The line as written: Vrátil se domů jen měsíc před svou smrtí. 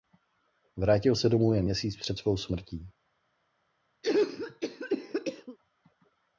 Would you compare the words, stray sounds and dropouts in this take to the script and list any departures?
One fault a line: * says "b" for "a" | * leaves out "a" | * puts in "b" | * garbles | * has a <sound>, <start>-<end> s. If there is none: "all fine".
* has a cough, 4.0-5.6 s